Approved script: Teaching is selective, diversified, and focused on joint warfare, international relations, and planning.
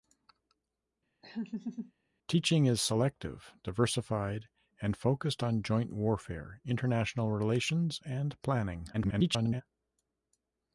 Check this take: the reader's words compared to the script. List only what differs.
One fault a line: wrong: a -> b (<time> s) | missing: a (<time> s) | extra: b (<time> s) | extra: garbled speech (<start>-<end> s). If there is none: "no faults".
extra: garbled speech (8.9-9.6 s)